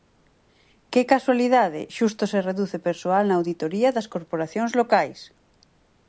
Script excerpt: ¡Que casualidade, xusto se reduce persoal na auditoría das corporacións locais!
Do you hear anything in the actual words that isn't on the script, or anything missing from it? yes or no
no